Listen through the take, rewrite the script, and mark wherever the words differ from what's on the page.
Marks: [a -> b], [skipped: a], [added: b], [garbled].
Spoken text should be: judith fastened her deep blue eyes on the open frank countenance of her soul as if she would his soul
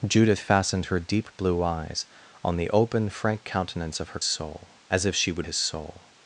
judith fastened her deep blue eyes on the open frank countenance of her soul as if she would his soul